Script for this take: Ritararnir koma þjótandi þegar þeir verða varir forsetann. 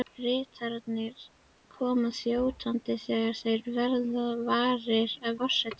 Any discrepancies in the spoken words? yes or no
no